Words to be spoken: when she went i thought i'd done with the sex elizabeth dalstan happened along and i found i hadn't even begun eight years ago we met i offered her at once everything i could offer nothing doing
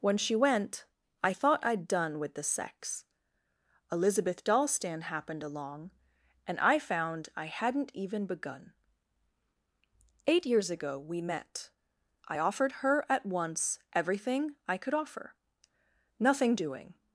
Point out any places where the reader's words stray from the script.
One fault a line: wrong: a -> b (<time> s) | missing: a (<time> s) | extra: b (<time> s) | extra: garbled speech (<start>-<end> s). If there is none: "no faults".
no faults